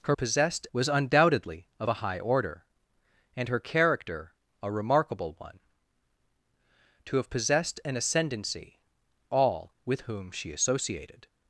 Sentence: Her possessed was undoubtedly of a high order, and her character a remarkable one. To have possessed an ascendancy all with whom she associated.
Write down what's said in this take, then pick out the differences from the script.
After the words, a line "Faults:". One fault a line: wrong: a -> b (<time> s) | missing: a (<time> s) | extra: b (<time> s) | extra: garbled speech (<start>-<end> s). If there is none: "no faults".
Her possessed was undoubtedly of a high order, and her character a remarkable one. To have possessed an ascendancy all with whom she associated.
Faults:
no faults